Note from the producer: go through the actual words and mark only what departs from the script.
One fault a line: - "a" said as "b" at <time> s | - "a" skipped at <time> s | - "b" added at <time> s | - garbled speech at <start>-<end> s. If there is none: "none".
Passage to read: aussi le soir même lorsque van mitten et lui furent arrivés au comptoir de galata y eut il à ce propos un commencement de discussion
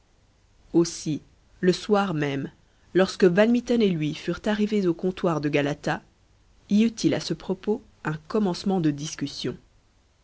none